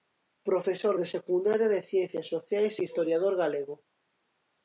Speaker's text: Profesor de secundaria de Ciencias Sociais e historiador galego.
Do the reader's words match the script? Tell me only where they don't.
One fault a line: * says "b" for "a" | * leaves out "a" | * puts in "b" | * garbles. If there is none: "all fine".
all fine